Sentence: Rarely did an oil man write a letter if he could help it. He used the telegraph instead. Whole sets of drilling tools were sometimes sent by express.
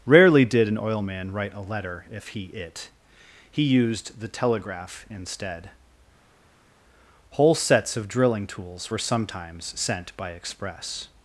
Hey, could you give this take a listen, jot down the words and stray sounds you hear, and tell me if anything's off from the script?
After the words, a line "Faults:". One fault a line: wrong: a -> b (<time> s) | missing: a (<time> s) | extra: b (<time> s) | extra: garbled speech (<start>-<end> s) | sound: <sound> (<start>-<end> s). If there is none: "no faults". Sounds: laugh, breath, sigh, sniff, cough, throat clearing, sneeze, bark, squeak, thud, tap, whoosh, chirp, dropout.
Rarely did an oil man write a letter if he it. He used the telegraph instead. Whole sets of drilling tools were sometimes sent by express.
Faults:
missing: could help (2.5 s)